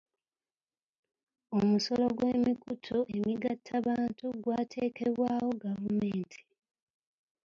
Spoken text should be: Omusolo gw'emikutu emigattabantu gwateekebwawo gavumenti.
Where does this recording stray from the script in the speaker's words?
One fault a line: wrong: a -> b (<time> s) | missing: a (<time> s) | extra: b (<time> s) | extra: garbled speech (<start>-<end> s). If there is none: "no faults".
no faults